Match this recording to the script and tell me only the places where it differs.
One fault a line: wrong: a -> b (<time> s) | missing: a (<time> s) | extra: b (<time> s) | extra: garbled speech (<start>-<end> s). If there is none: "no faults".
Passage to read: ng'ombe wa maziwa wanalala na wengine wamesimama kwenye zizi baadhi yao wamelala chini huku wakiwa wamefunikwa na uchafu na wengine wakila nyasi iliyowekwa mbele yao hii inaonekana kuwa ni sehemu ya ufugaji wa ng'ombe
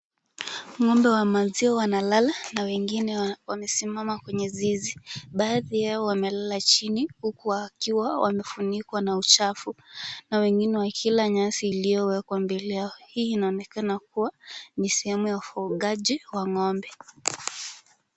no faults